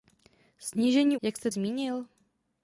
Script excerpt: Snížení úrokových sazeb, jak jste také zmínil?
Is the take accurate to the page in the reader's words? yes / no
no